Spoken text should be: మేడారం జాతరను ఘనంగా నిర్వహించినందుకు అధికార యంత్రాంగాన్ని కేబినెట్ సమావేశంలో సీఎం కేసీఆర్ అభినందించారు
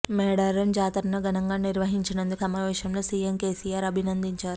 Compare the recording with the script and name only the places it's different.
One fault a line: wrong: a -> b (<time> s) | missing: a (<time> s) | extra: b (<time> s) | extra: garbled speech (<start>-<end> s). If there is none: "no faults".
missing: అధికార యంత్రాంగాన్ని కేబినెట్ (2.4 s)